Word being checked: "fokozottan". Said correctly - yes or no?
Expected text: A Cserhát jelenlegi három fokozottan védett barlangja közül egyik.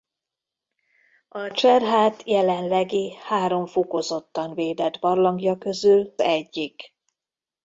yes